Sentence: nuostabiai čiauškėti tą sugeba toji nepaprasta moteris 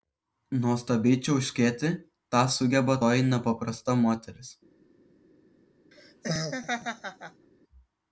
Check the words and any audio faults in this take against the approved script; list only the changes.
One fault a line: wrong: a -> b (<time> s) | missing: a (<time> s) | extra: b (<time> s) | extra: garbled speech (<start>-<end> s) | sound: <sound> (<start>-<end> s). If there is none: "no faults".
sound: laugh (5.9-7.5 s)